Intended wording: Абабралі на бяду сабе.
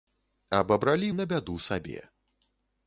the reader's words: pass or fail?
pass